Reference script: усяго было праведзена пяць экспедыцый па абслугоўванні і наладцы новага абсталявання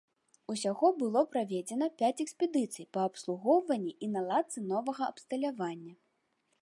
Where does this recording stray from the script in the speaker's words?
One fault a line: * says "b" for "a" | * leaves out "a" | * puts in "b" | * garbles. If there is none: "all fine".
all fine